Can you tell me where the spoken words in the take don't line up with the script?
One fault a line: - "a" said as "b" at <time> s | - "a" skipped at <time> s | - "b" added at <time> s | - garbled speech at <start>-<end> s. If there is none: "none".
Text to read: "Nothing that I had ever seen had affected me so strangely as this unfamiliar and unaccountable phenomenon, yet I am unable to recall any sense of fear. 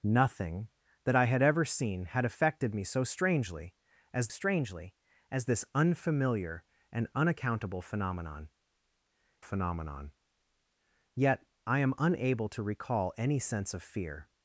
- "strangely as" added at 4.3 s
- "phenomenon" added at 9.4 s